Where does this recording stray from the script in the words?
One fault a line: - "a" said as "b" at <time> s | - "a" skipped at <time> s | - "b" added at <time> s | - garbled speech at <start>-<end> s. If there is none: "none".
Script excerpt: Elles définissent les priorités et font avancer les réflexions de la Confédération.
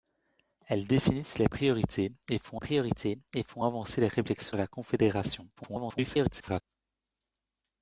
- "priorités et font" added at 2.6 s
- "de" skipped at 4.6 s
- garbled speech at 5.6-6.6 s